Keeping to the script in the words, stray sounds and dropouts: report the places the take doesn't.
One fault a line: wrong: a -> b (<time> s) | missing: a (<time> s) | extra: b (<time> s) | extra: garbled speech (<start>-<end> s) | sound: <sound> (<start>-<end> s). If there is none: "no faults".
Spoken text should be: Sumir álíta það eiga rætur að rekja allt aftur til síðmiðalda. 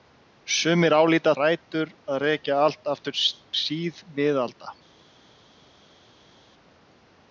missing: það eiga (1.3 s)
missing: til (3.2 s)